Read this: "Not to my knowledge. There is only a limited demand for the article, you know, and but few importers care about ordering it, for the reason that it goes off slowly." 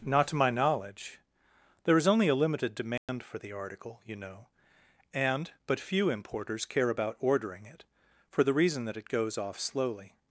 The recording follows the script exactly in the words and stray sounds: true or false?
false